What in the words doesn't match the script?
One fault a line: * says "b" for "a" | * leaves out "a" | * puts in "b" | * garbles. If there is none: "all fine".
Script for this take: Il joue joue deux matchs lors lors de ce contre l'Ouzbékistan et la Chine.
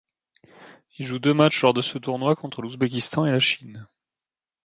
* leaves out "joue"
* leaves out "lors"
* puts in "tournoi"